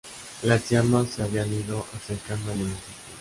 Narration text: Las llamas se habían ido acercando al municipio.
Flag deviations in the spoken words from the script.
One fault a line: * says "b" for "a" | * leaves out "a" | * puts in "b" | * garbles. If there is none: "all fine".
all fine